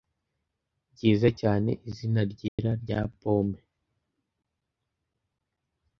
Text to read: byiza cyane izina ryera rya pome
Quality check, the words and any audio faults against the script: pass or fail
fail